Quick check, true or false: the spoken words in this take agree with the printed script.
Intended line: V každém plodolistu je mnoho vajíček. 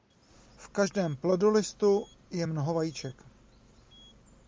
true